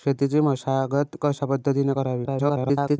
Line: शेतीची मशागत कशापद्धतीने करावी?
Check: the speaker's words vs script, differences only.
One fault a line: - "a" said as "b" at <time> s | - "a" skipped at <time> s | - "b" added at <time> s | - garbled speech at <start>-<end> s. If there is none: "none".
- garbled speech at 2.2-3.0 s